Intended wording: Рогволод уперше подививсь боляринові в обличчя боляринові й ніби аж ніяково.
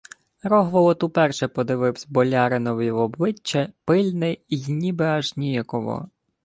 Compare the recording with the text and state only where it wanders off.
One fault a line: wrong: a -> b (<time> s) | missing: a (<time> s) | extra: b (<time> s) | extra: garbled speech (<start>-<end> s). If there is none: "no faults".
wrong: боляринові -> пильне (3.9 s)